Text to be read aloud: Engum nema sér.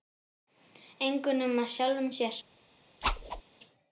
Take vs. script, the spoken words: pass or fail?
fail